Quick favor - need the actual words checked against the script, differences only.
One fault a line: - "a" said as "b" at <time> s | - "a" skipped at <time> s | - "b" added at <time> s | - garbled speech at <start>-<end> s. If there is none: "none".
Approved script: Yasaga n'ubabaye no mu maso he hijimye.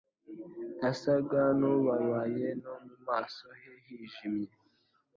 none